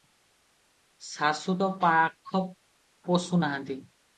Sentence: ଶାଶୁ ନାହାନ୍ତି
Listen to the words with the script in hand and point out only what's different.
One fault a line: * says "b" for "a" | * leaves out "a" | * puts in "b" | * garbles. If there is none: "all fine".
* puts in "ତ ପାଖ ପଶୁ"